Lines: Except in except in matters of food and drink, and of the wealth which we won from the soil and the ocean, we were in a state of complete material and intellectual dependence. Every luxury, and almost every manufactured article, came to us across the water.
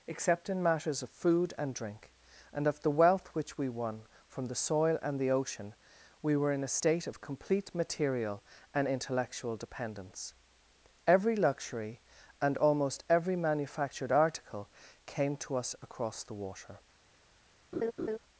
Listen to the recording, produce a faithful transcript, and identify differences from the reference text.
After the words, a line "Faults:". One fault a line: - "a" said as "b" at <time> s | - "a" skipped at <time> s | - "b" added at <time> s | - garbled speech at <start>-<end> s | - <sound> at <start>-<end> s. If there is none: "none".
Except in matters of food and drink, and of the wealth which we won from the soil and the ocean, we were in a state of complete material and intellectual dependence. Every luxury, and almost every manufactured article, came to us across the water.
Faults:
- "except in" skipped at 0.6 s
- laugh at 17.7-18.2 s